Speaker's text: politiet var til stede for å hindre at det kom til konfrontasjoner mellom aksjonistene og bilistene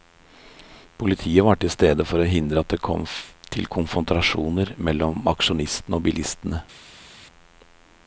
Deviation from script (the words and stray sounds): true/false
false